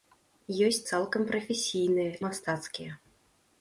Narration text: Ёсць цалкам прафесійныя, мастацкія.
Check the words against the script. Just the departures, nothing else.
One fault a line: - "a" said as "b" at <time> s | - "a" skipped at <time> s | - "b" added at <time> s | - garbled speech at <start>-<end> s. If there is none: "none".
none